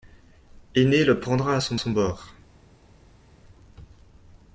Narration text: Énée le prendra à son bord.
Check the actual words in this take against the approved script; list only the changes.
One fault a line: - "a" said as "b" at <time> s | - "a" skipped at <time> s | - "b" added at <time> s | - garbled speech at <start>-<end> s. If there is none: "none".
- "son" added at 1.7 s